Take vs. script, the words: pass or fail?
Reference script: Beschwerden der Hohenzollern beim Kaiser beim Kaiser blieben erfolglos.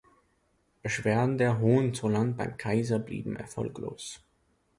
fail